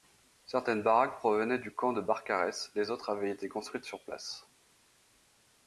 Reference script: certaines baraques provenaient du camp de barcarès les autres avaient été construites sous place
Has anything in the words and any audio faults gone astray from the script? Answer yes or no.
yes